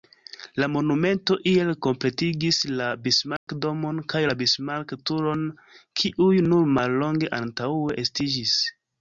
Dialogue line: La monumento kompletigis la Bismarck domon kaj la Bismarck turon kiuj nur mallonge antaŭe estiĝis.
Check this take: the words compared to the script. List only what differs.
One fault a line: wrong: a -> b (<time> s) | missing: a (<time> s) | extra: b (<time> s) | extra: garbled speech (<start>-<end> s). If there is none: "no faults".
extra: iel (1.5 s)